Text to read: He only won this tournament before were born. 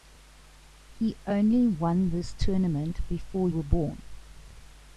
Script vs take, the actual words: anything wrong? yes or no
no